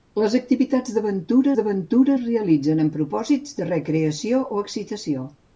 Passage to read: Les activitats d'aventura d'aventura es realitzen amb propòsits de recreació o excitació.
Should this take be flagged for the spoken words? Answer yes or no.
no